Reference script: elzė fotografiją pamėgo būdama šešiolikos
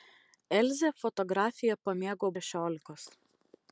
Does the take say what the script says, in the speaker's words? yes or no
no